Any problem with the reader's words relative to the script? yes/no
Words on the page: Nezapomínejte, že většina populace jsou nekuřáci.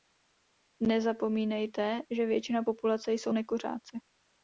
no